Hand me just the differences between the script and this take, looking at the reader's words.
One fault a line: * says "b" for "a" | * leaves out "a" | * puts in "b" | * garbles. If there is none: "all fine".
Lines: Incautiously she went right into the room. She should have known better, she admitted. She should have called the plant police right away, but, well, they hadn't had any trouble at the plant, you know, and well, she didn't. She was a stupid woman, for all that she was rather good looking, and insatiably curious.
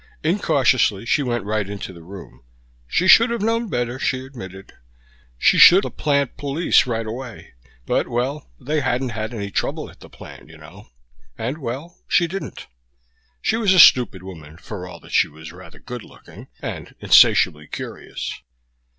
* leaves out "have called"